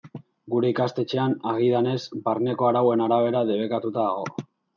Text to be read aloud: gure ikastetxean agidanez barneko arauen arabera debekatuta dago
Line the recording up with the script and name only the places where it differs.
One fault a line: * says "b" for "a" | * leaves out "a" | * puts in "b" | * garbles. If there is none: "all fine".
all fine